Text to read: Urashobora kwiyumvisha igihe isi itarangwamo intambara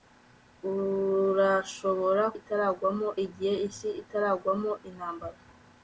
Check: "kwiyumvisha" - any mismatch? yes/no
yes